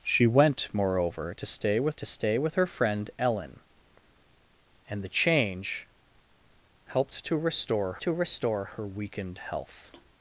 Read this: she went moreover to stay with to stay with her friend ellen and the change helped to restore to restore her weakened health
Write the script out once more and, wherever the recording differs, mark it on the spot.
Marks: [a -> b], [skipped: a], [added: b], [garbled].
she went moreover to stay with to stay with her friend ellen and the change helped to restore to restore her weakened health